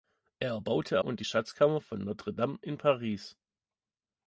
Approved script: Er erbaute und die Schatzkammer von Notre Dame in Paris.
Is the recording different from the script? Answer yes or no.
no